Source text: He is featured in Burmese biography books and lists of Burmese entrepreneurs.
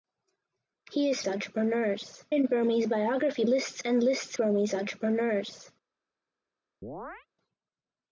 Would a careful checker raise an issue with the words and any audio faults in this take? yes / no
yes